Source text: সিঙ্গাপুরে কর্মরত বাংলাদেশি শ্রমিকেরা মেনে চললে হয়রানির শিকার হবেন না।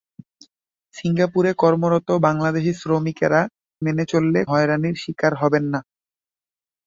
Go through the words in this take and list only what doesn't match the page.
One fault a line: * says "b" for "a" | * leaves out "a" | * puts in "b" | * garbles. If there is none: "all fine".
all fine